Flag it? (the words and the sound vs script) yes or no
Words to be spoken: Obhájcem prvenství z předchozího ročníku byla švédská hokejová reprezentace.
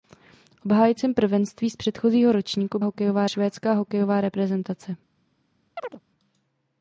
yes